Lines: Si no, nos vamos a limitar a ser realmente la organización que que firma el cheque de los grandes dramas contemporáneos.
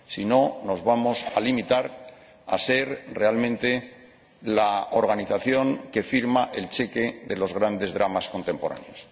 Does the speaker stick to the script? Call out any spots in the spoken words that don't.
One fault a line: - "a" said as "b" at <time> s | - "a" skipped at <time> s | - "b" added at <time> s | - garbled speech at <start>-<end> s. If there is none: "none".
- "que" skipped at 6.0 s